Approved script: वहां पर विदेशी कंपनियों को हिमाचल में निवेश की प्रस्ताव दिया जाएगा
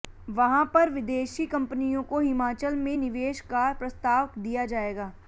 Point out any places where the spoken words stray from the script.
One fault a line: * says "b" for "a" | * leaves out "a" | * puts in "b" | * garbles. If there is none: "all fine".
* says "का" for "की"